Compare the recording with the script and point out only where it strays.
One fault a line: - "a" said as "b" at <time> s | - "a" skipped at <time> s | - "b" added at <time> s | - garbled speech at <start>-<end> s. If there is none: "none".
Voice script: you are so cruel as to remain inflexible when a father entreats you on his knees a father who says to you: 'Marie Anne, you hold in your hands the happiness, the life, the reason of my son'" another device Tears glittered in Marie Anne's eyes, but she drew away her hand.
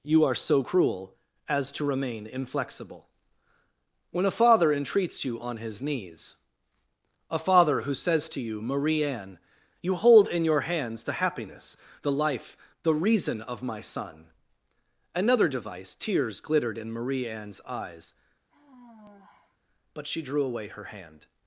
none